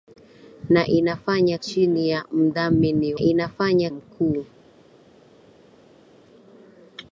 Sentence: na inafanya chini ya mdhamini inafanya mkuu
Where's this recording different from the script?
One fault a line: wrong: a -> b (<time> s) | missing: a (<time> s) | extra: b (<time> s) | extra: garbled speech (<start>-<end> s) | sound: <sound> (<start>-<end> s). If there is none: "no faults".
no faults